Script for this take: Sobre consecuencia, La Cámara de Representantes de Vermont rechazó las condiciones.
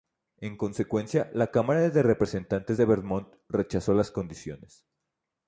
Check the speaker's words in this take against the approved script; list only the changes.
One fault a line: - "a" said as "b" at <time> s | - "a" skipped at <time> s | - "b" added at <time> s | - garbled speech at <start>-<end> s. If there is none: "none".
- "Sobre" said as "En" at 0.4 s